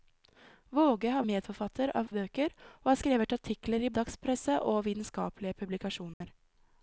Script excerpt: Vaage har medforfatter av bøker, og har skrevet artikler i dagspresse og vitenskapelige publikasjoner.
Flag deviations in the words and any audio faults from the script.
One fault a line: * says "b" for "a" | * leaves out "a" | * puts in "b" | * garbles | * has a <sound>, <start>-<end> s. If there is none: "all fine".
* has a dropout, 6.1-6.2 s